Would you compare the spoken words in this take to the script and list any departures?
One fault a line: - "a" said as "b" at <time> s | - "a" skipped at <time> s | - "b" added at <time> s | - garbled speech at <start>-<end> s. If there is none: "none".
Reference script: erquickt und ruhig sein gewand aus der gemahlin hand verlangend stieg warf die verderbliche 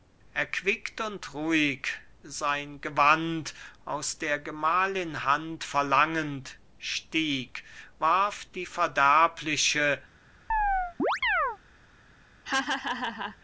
none